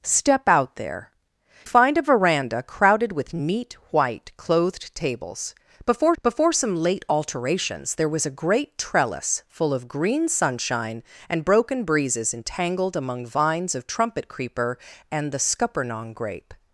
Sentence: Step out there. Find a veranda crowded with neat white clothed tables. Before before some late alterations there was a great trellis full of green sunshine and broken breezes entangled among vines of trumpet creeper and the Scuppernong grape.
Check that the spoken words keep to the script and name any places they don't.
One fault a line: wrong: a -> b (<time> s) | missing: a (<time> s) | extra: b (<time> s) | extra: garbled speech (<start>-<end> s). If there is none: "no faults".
no faults